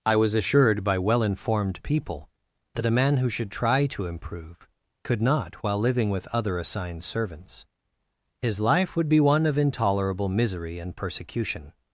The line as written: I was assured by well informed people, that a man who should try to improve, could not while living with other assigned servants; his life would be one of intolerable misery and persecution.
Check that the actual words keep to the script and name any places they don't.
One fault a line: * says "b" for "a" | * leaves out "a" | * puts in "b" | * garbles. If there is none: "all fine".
all fine